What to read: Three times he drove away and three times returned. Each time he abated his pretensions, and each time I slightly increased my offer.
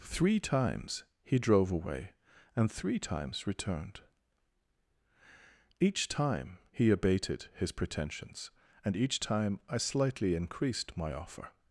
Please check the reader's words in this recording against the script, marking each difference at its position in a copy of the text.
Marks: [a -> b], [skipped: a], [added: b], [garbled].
Three times he drove away and three times returned. Each time he abated his pretensions, and each time I slightly increased my offer.